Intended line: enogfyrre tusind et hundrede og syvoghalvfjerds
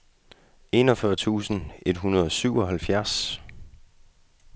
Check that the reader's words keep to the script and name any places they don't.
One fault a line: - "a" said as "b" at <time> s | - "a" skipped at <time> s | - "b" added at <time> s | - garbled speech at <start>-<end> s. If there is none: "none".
none